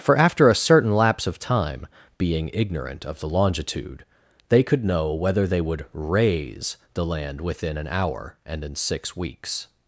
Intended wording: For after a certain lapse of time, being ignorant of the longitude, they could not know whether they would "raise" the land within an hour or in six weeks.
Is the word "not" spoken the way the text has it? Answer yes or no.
no